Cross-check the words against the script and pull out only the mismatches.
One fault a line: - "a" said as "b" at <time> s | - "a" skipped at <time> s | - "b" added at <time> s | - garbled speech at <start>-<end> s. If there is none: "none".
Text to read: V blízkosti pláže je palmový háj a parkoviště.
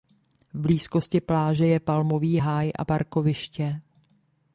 none